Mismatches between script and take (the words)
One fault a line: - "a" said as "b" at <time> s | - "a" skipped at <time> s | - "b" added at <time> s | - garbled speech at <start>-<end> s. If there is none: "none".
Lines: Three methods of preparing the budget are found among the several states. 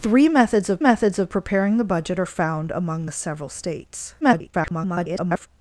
- "methods of" added at 0.8 s
- garbled speech at 4.2-5.5 s